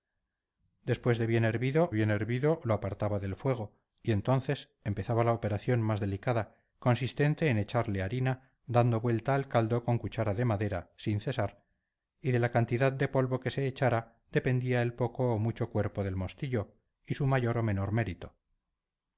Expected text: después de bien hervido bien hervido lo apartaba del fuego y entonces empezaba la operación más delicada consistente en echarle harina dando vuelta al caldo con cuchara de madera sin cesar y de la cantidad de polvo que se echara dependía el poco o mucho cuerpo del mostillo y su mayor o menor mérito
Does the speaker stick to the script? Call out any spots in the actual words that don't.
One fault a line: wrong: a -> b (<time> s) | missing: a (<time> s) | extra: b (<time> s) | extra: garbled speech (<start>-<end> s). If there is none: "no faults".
no faults